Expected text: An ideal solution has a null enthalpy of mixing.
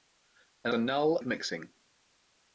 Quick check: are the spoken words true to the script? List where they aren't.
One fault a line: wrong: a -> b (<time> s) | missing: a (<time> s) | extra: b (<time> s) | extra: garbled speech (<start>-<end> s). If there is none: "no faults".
missing: ideal solution has (0.7 s)
missing: enthalpy (1.2 s)